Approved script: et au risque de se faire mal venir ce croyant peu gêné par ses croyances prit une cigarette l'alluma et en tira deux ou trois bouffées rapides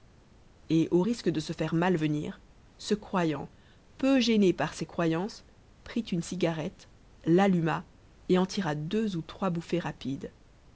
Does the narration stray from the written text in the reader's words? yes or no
no